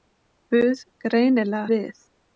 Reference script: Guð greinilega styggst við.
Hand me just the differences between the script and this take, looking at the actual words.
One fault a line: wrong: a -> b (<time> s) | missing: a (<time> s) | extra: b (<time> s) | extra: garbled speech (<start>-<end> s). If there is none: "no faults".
missing: styggst (1.6 s)